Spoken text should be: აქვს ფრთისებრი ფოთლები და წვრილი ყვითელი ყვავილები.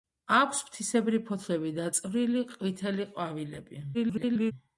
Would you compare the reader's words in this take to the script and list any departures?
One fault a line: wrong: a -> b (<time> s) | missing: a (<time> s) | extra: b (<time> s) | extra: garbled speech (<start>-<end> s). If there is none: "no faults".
extra: garbled speech (3.9-4.5 s)